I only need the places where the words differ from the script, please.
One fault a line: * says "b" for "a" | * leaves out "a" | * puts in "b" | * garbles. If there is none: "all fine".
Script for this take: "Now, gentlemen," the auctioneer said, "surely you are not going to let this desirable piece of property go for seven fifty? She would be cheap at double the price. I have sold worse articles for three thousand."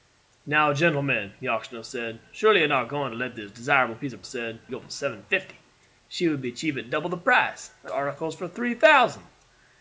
* says "said" for "property"
* leaves out "have sold worse"